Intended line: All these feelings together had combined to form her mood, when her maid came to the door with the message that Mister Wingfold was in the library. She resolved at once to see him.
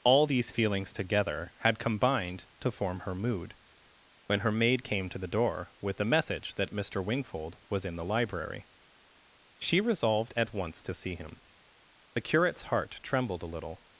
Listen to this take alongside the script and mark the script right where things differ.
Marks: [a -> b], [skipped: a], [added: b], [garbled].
All these feelings together had combined to form her mood, when her maid came to the door with the message that Mister Wingfold was in the library. She resolved at once to see him. [added: The curate's heart trembled a little]